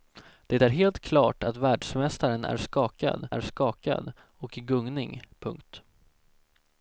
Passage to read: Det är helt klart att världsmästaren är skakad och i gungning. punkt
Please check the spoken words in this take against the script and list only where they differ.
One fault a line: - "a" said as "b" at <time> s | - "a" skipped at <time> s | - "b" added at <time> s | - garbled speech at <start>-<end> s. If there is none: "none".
- "är skakad" added at 3.3 s